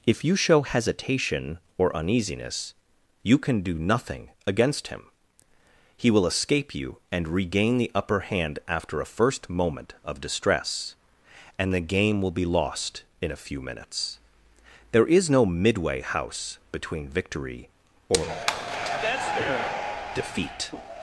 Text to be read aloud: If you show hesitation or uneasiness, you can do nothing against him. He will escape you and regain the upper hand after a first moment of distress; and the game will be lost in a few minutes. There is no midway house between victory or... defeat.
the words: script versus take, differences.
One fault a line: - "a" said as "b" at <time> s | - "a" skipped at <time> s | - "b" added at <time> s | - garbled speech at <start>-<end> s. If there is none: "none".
none